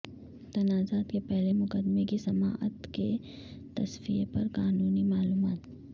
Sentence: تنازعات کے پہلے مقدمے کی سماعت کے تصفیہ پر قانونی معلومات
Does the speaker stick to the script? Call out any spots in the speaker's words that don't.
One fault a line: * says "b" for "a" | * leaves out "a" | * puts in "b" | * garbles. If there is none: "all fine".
all fine